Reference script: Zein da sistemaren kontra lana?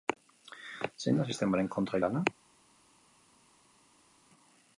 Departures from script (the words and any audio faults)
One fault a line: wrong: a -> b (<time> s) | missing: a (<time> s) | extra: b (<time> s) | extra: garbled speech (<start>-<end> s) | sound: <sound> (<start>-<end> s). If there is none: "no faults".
no faults